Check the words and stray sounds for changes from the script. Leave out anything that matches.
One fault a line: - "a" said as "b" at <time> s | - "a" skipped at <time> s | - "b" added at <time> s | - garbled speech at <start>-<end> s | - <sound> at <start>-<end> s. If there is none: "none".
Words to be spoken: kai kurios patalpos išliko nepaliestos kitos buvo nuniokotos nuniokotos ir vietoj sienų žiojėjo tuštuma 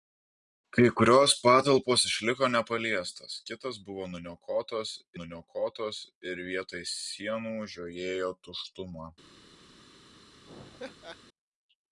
- laugh at 10.4-11.2 s